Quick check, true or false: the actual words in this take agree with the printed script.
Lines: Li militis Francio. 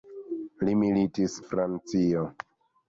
true